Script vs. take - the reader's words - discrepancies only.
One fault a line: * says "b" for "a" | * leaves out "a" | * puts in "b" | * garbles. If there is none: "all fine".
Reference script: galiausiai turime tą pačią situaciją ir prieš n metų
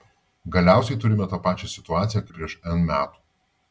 all fine